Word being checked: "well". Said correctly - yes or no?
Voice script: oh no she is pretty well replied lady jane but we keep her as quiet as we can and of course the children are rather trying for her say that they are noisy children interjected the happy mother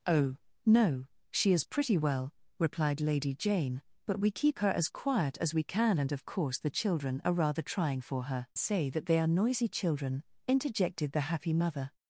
yes